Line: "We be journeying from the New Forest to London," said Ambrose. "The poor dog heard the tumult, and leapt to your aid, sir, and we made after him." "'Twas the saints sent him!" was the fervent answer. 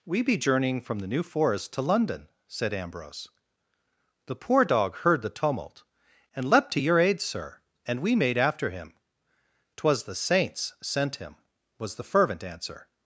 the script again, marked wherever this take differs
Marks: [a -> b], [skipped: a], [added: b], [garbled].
"We be journeying from the New Forest to London," said Ambrose. "The poor dog heard the tumult, and leapt to your aid, sir, and we made after him." "'Twas the saints sent him!" was the fervent answer.